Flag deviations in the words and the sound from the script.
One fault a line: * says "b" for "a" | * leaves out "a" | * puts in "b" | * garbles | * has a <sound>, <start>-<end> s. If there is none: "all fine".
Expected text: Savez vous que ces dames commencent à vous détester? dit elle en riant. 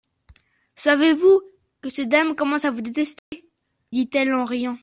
* has a dropout, 3.2-3.3 s